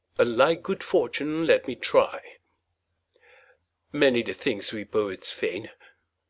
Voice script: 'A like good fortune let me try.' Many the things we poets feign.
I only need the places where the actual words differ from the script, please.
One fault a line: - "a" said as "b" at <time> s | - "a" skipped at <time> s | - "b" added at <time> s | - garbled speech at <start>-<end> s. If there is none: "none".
none